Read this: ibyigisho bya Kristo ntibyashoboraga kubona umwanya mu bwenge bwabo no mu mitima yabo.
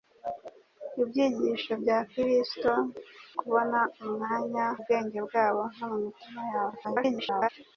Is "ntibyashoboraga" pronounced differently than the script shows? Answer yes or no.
yes